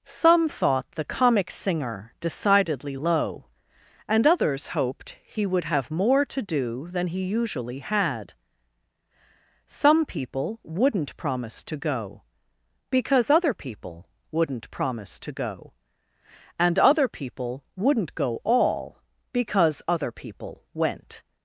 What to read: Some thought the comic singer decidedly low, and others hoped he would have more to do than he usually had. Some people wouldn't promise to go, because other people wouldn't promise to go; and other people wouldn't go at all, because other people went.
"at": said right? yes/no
no